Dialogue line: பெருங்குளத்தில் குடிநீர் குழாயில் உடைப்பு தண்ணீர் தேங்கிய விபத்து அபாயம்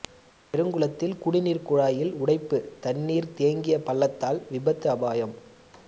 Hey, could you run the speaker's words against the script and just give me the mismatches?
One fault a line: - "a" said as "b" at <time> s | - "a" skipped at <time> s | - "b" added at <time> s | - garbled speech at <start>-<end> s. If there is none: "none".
- "பள்ளத்தால்" added at 3.8 s